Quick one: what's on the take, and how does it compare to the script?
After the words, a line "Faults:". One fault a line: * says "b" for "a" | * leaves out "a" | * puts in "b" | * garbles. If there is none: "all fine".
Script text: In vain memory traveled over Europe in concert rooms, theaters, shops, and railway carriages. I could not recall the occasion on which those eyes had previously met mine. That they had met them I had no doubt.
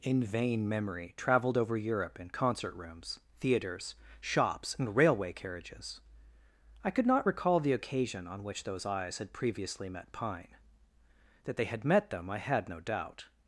In vain memory traveled over Europe in concert rooms, theaters, shops, and railway carriages. I could not recall the occasion on which those eyes had previously met pine. That they had met them I had no doubt.
Faults:
* says "pine" for "mine"